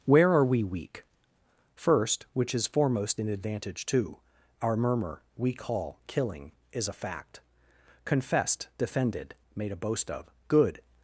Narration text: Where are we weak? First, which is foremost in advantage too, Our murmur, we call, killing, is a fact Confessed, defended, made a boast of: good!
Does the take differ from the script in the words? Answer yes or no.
no